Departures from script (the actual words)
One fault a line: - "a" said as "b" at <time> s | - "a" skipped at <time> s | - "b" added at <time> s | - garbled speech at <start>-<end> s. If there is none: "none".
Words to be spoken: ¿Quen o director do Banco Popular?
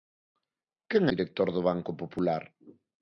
none